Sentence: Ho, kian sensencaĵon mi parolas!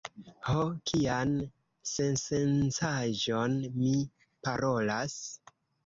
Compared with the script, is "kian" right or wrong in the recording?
right